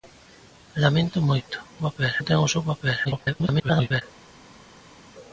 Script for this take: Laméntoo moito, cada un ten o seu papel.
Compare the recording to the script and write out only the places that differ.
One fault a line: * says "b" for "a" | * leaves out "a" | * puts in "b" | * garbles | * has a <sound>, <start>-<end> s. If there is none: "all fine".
* says "papel" for "cada"
* garbles